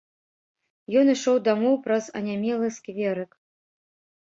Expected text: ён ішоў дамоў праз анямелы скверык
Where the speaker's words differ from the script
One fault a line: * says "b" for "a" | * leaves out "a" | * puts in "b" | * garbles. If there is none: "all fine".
all fine